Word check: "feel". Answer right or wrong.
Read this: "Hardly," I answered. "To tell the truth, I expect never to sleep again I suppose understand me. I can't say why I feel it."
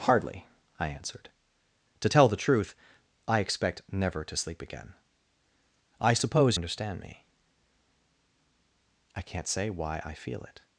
right